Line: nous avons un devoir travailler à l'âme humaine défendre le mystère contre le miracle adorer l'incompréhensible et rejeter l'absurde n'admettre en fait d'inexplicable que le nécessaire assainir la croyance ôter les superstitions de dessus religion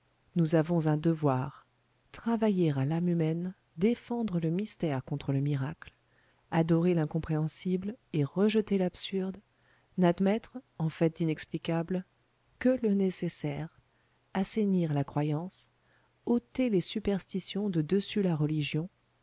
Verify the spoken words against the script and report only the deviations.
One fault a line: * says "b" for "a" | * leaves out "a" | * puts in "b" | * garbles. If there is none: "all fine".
* puts in "la"